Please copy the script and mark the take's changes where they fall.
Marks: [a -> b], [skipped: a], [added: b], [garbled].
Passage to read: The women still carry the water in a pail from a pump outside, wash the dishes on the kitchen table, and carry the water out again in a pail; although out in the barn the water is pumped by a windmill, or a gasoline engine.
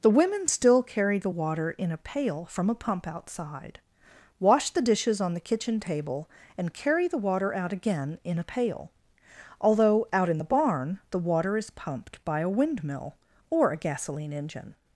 The women still carry the water in a pail from a pump outside, wash the dishes on the kitchen table, and carry the water out again in a pail; although out in the barn the water is pumped by a windmill, or a gasoline engine.